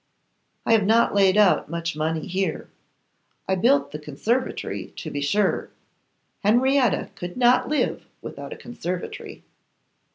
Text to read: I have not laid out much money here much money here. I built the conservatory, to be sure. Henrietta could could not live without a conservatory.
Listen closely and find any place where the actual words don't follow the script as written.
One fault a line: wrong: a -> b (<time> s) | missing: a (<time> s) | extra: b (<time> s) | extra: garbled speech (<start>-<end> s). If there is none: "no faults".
missing: much money here (2.7 s)
missing: could (7.3 s)